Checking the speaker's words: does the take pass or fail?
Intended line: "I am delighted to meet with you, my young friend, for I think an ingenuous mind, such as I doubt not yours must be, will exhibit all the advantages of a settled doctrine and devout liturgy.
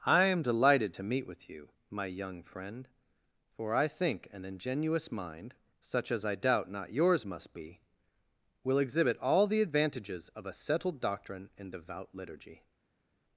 pass